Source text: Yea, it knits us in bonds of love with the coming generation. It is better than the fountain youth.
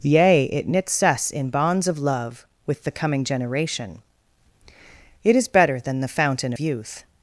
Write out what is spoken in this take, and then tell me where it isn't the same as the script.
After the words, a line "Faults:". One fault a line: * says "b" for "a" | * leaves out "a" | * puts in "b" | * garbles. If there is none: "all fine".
Yea, it knits us in bonds of love with the coming generation. It is better than the fountain youth.
Faults:
all fine